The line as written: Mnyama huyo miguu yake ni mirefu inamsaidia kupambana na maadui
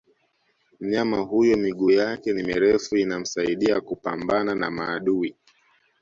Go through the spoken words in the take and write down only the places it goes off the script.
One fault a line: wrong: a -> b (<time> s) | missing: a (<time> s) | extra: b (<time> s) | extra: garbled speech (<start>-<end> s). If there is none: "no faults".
no faults